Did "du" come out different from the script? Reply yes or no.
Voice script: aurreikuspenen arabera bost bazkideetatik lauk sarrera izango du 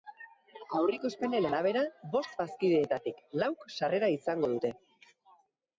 yes